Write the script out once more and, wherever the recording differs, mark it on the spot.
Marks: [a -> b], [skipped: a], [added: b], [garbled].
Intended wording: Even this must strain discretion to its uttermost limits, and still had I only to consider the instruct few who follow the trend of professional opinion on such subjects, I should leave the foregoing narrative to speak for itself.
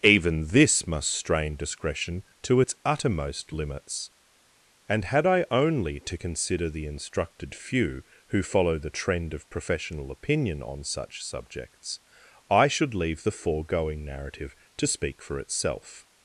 Even this must strain discretion to its uttermost limits, and [skipped: still] had I only to consider the [instruct -> instructed] few who follow the trend of professional opinion on such subjects, I should leave the foregoing narrative to speak for itself.